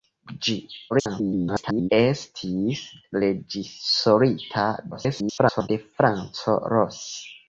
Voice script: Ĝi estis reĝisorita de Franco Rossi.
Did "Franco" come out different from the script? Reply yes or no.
no